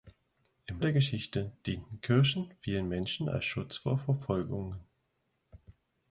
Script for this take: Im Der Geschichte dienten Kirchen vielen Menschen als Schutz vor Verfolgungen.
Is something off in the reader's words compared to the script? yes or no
no